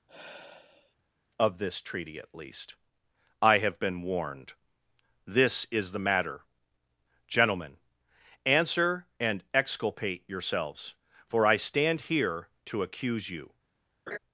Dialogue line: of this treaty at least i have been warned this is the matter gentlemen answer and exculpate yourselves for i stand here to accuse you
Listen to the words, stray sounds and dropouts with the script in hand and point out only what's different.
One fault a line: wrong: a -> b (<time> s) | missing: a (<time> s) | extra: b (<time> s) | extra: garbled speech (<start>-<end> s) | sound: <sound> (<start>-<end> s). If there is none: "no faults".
sound: sigh (0.1-1.0 s)
sound: laugh (14.1-14.2 s)